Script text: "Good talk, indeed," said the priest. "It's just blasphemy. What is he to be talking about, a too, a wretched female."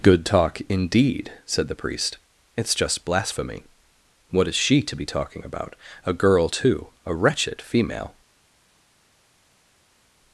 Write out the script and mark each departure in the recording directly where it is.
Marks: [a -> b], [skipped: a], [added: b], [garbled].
"Good talk, indeed," said the priest. "It's just blasphemy. What is [he -> she] to be talking about, a [added: girl] too, a wretched female."